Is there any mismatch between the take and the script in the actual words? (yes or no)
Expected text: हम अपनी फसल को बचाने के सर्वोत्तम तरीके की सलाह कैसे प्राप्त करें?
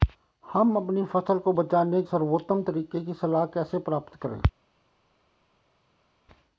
yes